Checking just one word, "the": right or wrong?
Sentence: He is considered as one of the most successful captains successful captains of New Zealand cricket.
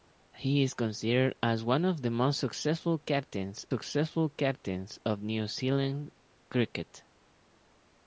right